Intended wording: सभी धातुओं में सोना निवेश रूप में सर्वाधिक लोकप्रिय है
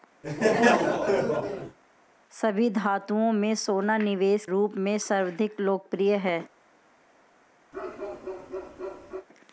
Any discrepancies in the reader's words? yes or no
no